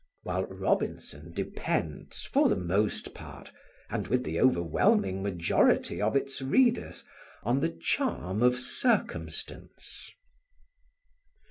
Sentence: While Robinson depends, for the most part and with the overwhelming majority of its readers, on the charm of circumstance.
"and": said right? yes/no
yes